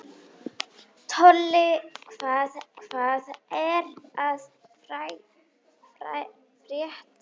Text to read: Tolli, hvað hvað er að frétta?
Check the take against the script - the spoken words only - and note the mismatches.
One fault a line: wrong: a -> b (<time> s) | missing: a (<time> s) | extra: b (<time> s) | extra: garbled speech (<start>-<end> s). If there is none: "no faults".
no faults